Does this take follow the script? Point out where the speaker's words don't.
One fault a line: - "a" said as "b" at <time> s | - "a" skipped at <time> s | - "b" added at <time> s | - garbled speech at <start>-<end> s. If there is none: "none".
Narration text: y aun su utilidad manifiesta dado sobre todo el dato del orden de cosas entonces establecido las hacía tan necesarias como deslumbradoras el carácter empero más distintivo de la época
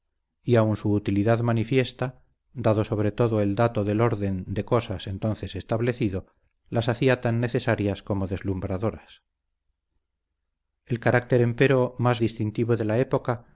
none